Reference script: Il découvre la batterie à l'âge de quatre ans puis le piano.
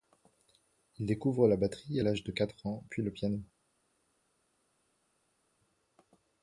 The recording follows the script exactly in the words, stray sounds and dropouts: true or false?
true